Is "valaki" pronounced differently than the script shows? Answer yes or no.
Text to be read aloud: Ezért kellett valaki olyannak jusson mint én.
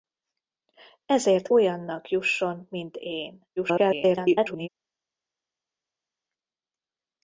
yes